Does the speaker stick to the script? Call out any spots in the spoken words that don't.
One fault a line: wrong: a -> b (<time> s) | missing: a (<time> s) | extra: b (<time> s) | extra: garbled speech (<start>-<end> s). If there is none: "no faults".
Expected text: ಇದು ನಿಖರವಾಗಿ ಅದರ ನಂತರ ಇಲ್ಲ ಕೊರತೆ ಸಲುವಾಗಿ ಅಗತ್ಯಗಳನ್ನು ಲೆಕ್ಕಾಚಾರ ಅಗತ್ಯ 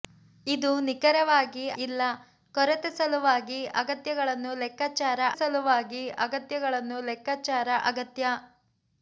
wrong: ಅದರ ನಂತರ ಇಲ್ಲ ಕೊರತೆ -> ಇಲ್ಲ ಕೊರತೆ ಸಲುವಾಗಿ ಅಗತ್ಯಗಳನ್ನು ಲೆಕ್ಕಾಚಾರ (1.8 s)